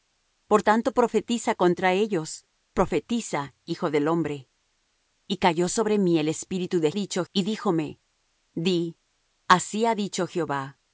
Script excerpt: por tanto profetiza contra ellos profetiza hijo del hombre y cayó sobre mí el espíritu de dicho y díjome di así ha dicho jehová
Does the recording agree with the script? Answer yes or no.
yes